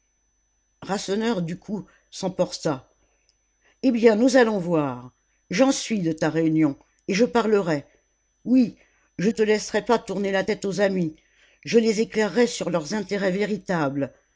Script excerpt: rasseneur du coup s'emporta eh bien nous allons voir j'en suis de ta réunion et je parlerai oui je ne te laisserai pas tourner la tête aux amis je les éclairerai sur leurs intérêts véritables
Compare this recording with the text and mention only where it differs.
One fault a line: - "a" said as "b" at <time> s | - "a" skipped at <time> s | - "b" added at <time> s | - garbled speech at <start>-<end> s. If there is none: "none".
- "ne" skipped at 9.3 s